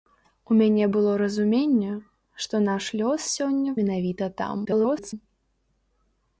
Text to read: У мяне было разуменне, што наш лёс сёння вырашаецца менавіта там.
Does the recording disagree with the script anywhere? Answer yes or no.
yes